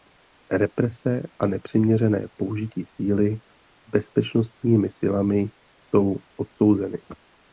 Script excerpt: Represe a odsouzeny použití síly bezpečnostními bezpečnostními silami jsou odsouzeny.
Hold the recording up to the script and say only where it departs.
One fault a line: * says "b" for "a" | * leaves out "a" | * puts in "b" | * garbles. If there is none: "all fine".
* says "nepřiměřené" for "odsouzeny"
* leaves out "bezpečnostními"